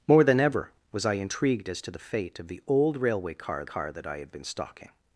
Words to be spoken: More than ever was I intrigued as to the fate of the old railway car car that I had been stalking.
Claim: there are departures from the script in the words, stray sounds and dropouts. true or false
false